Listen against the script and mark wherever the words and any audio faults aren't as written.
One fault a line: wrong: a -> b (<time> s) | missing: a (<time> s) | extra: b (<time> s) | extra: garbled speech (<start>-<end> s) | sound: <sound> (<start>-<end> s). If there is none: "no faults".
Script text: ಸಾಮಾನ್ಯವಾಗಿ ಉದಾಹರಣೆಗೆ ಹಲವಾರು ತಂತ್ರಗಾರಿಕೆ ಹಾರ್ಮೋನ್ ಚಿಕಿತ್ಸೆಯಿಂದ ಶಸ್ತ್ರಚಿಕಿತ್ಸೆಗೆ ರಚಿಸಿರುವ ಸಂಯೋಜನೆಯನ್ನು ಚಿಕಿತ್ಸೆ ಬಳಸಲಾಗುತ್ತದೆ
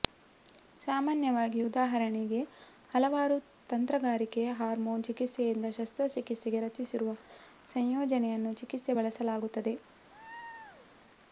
sound: laugh (10.1-10.9 s)